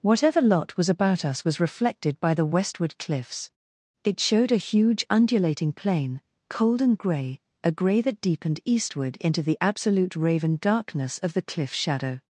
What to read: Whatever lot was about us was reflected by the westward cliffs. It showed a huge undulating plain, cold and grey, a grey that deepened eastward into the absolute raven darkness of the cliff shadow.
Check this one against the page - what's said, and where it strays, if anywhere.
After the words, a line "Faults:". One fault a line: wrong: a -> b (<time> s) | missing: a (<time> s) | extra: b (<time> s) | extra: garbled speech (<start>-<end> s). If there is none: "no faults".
Whatever lot was about us was reflected by the westward cliffs. It showed a huge undulating plain, cold and grey, a grey that deepened eastward into the absolute raven darkness of the cliff shadow.
Faults:
no faults